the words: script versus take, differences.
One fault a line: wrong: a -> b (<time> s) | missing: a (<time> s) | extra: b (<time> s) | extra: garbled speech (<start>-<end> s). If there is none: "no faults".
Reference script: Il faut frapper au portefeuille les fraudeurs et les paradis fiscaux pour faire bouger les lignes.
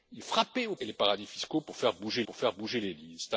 missing: faut (0.2 s)
wrong: portefeuille -> et (0.8 s)
wrong: fraudeurs et les paradis fiscaux -> paradis fiscaux pour faire bouger (0.9 s)